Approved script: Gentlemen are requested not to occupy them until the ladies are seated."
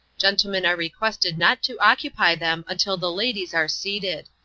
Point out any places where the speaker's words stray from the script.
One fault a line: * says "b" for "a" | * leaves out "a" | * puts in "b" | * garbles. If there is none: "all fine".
all fine